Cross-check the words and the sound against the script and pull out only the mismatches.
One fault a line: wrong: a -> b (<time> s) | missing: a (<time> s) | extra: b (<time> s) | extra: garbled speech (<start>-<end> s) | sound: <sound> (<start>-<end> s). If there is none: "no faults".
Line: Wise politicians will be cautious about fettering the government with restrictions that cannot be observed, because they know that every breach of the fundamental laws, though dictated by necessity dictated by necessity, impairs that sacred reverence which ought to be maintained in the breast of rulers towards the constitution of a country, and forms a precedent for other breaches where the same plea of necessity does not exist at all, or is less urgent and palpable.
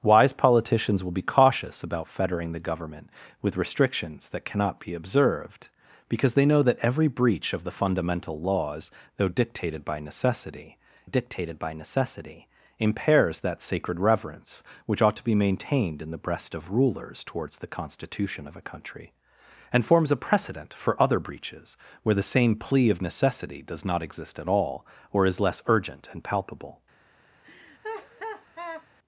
sound: laugh (27.4-28.9 s)